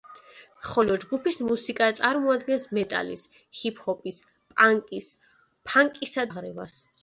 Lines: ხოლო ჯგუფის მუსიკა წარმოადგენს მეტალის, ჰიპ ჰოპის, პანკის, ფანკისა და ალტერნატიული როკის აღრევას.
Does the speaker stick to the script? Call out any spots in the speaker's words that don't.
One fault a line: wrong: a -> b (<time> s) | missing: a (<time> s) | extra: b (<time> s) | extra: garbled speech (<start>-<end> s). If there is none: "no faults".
missing: და ალტერნატიული როკის (6.3 s)